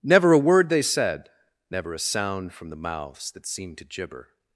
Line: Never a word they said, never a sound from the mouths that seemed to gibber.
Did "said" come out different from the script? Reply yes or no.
no